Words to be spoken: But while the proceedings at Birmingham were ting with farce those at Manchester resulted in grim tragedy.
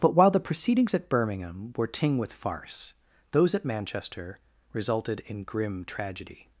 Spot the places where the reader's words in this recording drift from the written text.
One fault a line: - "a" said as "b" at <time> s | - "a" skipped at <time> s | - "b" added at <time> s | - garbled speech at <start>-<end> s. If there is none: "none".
none